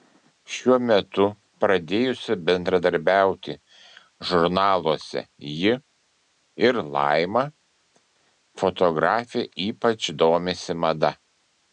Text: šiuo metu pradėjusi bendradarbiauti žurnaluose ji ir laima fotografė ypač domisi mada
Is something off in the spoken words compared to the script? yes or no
no